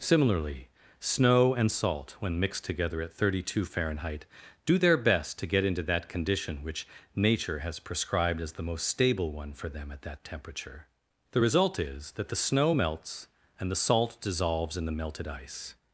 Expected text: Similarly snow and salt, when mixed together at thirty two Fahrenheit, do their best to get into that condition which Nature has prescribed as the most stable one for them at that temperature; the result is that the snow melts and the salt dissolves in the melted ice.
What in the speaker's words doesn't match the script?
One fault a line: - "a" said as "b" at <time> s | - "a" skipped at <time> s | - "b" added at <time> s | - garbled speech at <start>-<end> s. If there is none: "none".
none